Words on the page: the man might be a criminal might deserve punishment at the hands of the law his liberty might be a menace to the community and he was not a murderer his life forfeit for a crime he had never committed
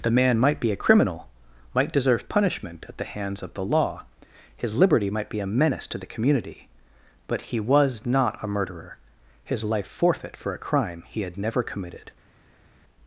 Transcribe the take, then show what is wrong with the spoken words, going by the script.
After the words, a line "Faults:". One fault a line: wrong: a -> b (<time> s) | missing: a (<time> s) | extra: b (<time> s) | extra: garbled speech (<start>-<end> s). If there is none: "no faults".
the man might be a criminal might deserve punishment at the hands of the law his liberty might be a menace to the community but he was not a murderer his life forfeit for a crime he had never committed
Faults:
wrong: and -> but (7.3 s)